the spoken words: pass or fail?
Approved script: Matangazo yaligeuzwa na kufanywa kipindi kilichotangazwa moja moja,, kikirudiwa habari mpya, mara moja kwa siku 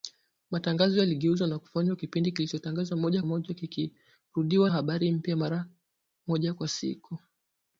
pass